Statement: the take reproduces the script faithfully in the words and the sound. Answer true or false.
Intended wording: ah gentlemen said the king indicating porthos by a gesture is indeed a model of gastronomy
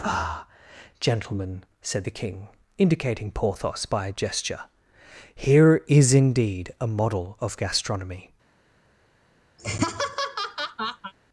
false